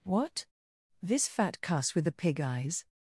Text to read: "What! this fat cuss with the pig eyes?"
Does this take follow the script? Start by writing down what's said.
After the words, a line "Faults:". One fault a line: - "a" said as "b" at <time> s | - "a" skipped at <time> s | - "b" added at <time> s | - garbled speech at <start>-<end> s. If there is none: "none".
"What! this fat cuss with the pig eyes?"
Faults:
none